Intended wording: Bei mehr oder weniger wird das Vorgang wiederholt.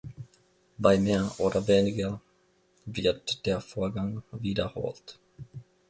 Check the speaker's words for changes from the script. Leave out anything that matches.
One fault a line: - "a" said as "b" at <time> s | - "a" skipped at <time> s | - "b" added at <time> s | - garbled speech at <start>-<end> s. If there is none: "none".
- "das" said as "der" at 3.5 s